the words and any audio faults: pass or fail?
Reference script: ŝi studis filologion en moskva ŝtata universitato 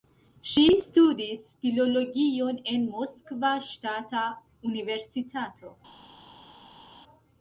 pass